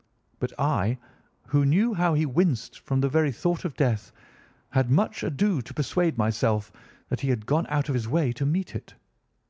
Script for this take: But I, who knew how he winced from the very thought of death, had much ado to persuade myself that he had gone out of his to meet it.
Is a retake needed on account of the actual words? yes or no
yes